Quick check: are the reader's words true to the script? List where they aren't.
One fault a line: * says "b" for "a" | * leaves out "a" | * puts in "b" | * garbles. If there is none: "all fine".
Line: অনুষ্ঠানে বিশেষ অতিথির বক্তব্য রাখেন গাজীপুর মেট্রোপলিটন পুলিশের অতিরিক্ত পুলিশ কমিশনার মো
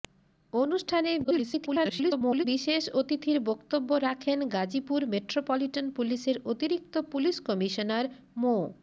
* garbles